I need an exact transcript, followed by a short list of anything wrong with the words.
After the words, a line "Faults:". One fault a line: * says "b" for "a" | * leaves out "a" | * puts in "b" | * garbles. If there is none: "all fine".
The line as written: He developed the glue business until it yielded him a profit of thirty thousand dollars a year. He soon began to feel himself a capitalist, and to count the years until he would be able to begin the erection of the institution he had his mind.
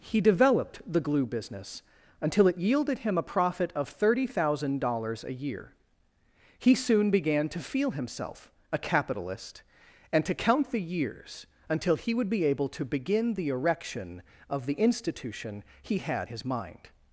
He developed the glue business until it yielded him a profit of thirty thousand dollars a year. He soon began to feel himself a capitalist, and to count the years until he would be able to begin the erection of the institution he had his mind.
Faults:
all fine